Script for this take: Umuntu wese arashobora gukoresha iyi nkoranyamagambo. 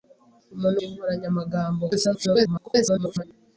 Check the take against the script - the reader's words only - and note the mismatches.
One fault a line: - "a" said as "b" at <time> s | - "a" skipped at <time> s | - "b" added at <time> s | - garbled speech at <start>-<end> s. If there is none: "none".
- "wese arashobora gukoresha" skipped at 0.8 s
- garbled speech at 1.9-3.2 s